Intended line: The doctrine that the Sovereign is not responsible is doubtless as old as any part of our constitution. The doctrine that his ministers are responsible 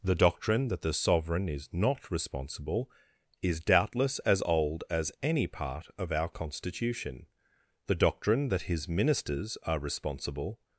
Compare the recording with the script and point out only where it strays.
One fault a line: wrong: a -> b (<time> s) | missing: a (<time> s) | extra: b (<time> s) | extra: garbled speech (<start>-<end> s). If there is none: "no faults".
no faults